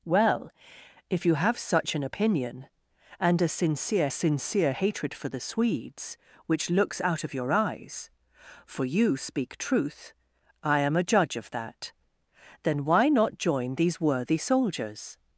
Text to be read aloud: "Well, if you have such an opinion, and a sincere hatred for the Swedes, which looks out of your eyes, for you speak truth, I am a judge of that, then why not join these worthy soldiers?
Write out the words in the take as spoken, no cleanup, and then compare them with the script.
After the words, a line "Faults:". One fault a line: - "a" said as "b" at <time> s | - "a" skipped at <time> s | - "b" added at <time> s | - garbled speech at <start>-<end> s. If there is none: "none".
"Well, if you have such an opinion, and a sincere sincere hatred for the Swedes, which looks out of your eyes, for you speak truth, I am a judge of that, then why not join these worthy soldiers?
Faults:
- "sincere" added at 4.1 s